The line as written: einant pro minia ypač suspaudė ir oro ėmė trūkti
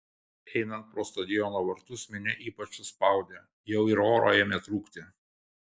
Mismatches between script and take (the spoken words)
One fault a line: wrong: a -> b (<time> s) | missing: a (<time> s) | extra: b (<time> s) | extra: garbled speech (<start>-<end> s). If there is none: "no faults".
extra: stadiono vartus (1.1 s)
extra: jau (3.8 s)